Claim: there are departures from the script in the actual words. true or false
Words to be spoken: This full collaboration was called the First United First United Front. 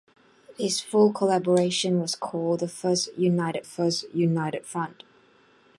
false